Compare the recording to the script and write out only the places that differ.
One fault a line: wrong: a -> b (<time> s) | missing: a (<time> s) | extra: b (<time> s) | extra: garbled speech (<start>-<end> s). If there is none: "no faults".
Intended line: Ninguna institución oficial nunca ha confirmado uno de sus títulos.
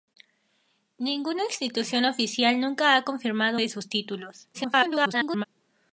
missing: uno (3.6 s)
extra: garbled speech (4.5-5.4 s)